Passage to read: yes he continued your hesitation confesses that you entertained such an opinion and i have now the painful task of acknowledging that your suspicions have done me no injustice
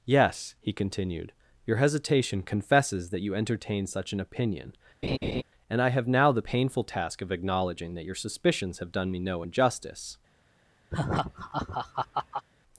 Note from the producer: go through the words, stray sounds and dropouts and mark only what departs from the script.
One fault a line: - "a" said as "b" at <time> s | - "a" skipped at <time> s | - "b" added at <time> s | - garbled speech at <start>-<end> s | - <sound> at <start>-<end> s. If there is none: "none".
- "entertained" said as "entertain" at 3.4 s
- laugh at 5.0-5.4 s
- laugh at 10.9-12.5 s